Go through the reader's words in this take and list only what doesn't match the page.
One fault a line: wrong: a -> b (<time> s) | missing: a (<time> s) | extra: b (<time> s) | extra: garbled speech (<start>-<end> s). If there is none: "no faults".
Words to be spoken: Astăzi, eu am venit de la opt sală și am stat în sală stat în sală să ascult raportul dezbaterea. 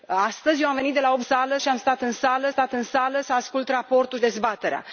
no faults